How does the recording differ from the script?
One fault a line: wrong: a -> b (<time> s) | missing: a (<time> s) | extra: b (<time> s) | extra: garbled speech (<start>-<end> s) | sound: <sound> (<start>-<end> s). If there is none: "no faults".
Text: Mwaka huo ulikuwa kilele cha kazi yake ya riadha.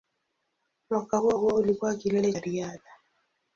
extra: huo (1.3 s)
missing: cha kazi yake (2.3 s)